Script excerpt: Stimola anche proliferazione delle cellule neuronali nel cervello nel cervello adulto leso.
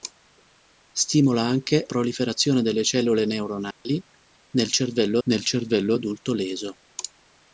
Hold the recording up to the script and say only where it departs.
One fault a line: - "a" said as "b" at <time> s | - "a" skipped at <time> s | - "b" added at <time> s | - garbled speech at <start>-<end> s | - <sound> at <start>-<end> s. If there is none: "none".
- dropout at 3.7-3.8 s